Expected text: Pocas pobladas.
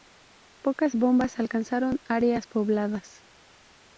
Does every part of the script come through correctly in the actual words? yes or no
no